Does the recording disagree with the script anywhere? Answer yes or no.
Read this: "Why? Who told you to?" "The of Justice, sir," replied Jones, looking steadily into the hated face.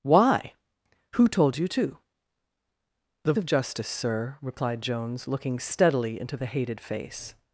no